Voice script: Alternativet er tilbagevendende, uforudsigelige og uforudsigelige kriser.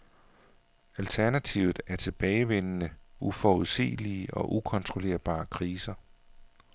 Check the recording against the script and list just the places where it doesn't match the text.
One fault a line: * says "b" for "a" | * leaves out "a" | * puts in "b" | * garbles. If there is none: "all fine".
* says "ukontrollerbare" for "uforudsigelige"